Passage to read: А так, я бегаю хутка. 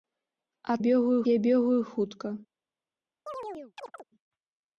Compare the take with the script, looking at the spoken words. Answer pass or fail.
fail